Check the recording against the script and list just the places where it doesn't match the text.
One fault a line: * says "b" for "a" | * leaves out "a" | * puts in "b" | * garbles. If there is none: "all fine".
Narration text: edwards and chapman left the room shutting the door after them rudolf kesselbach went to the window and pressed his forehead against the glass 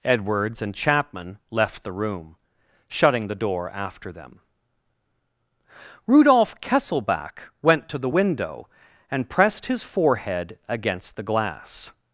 all fine